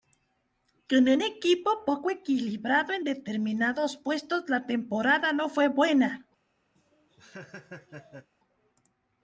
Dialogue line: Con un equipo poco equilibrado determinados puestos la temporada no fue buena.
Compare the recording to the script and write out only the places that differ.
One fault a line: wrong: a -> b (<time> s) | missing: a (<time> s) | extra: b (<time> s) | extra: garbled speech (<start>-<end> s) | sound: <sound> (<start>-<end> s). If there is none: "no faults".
extra: en (2.9 s)
sound: laugh (6.8-8.3 s)